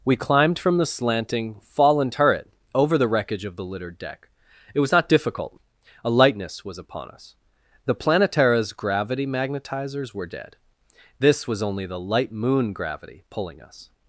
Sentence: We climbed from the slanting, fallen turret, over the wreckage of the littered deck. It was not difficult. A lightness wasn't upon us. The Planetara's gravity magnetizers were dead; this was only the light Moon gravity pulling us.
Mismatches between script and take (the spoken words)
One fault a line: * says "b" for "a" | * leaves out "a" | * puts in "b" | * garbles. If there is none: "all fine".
* says "was" for "wasn't"